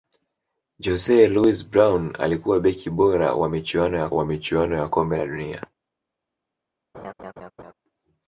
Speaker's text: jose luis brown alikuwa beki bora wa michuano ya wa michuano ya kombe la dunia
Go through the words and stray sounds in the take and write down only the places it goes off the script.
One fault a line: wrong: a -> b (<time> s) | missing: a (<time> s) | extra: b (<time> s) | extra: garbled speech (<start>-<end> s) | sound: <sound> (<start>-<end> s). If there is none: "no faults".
sound: laugh (6.9-7.7 s)